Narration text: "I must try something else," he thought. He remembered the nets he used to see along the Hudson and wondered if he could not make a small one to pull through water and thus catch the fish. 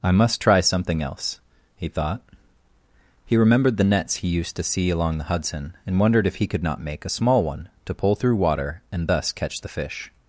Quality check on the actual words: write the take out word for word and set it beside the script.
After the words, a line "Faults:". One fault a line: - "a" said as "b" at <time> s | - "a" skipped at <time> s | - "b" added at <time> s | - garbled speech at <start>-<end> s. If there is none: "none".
"I must try something else," he thought. He remembered the nets he used to see along the Hudson and wondered if he could not make a small one to pull through water and thus catch the fish.
Faults:
none